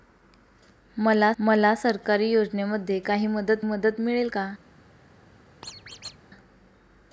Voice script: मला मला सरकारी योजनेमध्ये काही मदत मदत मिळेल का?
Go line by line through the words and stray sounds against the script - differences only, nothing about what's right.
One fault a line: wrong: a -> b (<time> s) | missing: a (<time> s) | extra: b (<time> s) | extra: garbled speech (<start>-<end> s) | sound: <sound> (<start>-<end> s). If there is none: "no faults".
sound: squeak (5.6-6.2 s)